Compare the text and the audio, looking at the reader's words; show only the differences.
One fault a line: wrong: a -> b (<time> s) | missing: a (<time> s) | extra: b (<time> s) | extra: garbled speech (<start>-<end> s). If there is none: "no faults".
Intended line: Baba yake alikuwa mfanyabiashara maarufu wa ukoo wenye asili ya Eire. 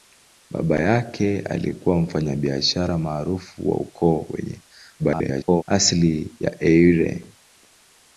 extra: garbled speech (5.0-5.6 s)